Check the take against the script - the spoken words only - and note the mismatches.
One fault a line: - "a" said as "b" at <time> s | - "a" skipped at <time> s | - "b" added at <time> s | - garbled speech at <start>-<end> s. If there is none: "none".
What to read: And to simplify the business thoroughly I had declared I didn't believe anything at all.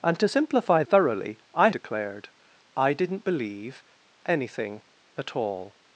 - "the business" skipped at 0.8 s
- "had" skipped at 1.7 s